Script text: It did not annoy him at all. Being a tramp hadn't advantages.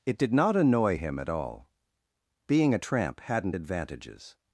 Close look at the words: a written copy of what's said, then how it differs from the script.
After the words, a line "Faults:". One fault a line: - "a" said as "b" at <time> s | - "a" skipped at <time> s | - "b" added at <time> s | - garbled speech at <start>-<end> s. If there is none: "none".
It did not annoy him at all. Being a tramp hadn't advantages.
Faults:
none